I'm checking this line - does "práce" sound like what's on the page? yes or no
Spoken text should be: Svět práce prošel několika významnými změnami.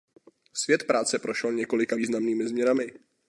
yes